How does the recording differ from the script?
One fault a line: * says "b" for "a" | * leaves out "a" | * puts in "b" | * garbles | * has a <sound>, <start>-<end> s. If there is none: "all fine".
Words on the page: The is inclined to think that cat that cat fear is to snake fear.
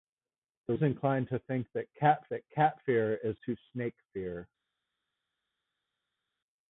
all fine